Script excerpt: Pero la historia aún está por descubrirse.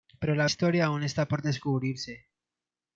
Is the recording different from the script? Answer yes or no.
no